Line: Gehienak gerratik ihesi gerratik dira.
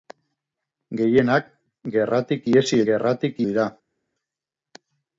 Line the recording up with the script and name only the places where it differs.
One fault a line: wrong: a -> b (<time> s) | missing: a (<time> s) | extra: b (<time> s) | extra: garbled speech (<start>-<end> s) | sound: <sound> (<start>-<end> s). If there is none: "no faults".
no faults